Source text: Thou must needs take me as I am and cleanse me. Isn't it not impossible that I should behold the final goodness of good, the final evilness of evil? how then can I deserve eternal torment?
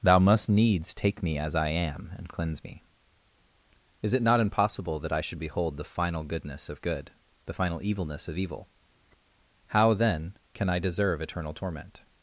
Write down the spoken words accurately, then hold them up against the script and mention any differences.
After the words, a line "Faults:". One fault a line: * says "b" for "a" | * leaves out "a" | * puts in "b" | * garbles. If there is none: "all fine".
Thou must needs take me as I am and cleanse me. Is it not impossible that I should behold the final goodness of good, the final evilness of evil? how then can I deserve eternal torment?
Faults:
* says "Is" for "Isn't"